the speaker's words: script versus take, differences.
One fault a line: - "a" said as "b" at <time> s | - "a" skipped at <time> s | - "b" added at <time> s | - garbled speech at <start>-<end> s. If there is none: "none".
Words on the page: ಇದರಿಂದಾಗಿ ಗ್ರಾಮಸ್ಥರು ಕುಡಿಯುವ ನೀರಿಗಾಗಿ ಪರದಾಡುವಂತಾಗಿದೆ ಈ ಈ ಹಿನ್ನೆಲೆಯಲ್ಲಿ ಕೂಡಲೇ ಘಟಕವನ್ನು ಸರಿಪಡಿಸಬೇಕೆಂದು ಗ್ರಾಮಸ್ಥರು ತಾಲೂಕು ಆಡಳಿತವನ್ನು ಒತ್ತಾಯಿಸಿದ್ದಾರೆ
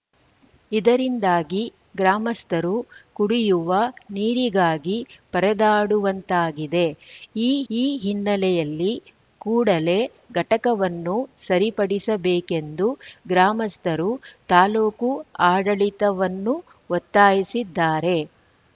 none